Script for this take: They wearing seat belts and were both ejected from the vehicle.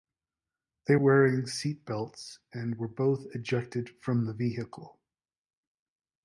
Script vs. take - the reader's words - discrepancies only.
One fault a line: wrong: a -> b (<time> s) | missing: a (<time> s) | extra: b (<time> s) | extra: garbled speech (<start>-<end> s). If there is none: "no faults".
no faults